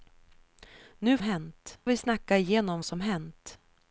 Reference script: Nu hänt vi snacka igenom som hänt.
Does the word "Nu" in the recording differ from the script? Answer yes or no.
no